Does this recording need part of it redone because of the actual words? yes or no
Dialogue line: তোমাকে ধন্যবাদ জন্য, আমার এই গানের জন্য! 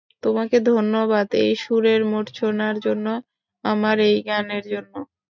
yes